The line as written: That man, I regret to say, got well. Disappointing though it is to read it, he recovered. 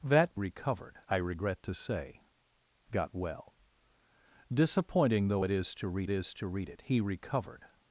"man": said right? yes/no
no